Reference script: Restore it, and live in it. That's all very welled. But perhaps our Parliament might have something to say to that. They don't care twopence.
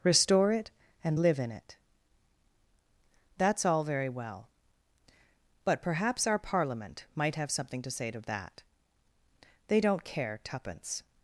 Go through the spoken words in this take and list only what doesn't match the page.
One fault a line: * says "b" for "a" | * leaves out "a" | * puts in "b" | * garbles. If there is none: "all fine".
* says "well" for "welled"